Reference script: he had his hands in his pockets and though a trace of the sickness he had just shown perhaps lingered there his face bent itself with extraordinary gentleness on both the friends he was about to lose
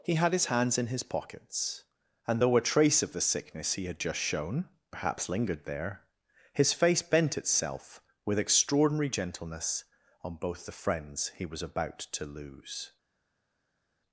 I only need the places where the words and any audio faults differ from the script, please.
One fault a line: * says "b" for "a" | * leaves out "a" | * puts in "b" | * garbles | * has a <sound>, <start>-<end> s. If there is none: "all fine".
all fine